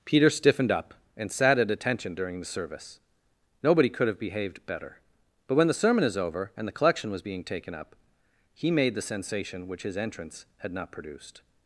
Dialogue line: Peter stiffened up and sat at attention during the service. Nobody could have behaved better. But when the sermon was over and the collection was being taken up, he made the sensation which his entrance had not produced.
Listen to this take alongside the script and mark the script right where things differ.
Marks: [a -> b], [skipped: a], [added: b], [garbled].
Peter stiffened up and sat at attention during the service. Nobody could have behaved better. But when the sermon [was -> is] over and the collection was being taken up, he made the sensation which his entrance had not produced.